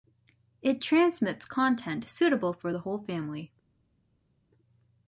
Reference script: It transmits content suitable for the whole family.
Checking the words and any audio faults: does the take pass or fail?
pass